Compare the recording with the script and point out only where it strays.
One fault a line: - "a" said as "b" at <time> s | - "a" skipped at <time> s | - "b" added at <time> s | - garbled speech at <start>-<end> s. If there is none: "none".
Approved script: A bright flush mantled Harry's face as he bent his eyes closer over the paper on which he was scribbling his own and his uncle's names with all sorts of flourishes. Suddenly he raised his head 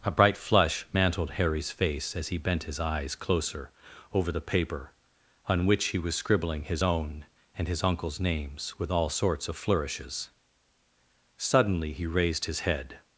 none